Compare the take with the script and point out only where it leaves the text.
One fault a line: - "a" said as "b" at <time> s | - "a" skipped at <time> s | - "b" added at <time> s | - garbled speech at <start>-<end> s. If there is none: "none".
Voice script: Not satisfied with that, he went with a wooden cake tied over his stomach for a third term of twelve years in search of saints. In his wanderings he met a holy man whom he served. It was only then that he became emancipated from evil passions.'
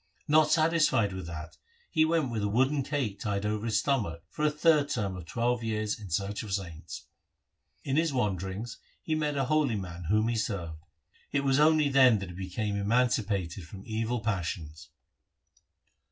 none